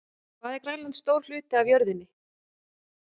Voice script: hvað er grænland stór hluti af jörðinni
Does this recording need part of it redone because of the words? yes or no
no